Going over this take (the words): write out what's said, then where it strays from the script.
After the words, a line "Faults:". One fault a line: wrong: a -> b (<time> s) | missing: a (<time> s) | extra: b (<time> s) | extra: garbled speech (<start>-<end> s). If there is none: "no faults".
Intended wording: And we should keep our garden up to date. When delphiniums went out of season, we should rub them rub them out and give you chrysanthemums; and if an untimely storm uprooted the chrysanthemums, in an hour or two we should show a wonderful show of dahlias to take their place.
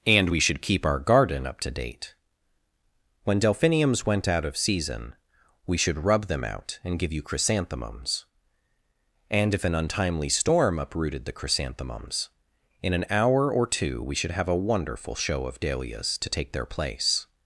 And we should keep our garden up to date. When delphiniums went out of season, we should rub them out and give you chrysanthemums; and if an untimely storm uprooted the chrysanthemums, in an hour or two we should have a wonderful show of dahlias to take their place.
Faults:
missing: rub them (6.4 s)
wrong: show -> have (14.3 s)